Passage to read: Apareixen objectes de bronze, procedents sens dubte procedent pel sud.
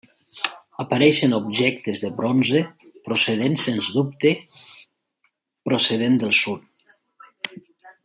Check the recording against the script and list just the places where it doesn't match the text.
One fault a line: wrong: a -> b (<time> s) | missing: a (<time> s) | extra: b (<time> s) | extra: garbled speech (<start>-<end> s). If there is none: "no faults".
wrong: pel -> del (6.2 s)